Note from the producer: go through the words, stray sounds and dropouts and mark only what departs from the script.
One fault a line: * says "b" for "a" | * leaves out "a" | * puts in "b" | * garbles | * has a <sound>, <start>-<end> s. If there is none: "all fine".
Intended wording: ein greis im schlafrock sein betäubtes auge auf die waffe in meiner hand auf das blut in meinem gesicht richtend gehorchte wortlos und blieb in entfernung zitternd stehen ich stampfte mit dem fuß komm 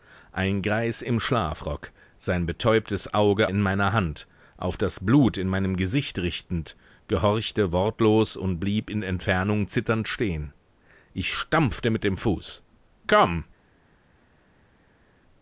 * leaves out "auf die waffe"